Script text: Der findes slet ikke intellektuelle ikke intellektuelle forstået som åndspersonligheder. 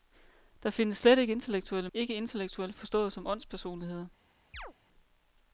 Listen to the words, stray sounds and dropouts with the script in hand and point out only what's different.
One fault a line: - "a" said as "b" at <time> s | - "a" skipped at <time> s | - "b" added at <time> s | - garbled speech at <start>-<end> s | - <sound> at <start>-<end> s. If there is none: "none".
- chirp at 4.5-4.7 s